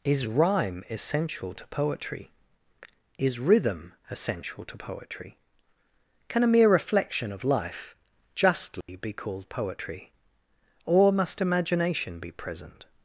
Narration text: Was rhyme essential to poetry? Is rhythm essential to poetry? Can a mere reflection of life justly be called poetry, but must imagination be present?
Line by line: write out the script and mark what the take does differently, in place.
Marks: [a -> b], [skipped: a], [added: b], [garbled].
[Was -> Is] rhyme essential to poetry? Is rhythm essential to poetry? Can a mere reflection of life justly be called poetry, [but -> or] must imagination be present?